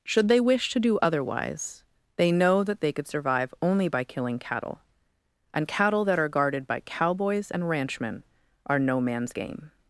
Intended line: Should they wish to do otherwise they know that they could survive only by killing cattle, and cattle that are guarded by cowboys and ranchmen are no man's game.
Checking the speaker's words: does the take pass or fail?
pass